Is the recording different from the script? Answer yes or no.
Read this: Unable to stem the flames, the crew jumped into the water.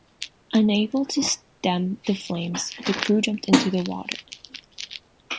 no